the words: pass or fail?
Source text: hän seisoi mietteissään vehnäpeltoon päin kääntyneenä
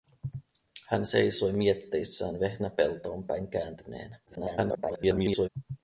fail